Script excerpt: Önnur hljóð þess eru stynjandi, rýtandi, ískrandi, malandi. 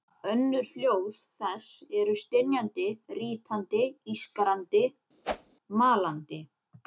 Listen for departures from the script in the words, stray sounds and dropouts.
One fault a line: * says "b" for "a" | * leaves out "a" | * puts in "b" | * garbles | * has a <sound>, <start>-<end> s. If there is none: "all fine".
* has a whoosh, 5.2-5.6 s